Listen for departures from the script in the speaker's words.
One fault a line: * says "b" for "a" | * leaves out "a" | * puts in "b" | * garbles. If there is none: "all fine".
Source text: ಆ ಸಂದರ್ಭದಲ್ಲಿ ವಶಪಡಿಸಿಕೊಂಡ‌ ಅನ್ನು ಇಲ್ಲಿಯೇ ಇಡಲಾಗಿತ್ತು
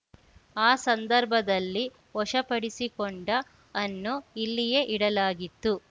all fine